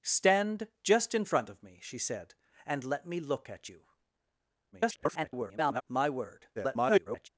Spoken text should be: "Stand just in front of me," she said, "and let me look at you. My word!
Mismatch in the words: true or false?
true